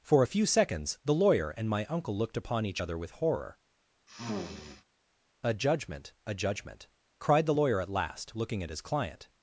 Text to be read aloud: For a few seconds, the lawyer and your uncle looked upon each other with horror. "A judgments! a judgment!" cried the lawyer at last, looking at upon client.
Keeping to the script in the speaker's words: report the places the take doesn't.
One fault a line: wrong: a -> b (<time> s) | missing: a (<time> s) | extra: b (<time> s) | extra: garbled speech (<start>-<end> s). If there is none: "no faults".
wrong: your -> my (1.7 s)
wrong: judgments -> judgment (5.5 s)
wrong: upon -> his (8.7 s)